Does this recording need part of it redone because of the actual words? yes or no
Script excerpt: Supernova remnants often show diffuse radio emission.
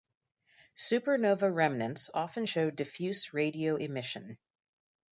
no